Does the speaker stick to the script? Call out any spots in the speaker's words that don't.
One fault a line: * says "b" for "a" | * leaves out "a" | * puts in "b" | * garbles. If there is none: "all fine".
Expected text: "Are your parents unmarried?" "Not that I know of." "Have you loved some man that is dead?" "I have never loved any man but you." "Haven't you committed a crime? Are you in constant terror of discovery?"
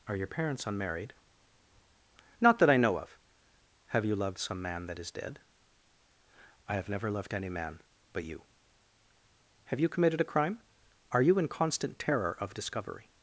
* says "Have" for "Haven't"